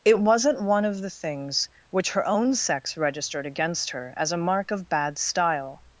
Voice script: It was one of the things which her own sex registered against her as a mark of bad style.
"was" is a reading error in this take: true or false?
true